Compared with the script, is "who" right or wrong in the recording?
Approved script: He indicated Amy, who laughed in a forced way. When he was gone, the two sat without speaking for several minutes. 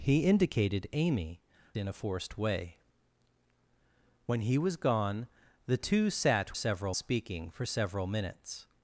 wrong